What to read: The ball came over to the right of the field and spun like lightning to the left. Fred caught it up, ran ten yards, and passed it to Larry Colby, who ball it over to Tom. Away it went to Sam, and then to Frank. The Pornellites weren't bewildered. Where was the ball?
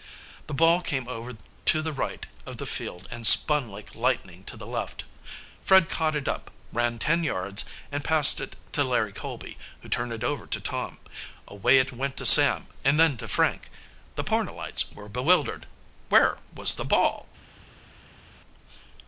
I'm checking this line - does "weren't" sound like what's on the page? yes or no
no